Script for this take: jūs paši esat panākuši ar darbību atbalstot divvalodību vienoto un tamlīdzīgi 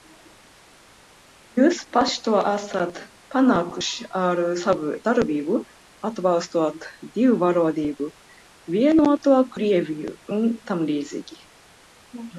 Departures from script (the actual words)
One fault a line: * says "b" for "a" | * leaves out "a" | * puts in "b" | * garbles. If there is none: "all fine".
* puts in "to"
* puts in "savu"
* puts in "krieviju"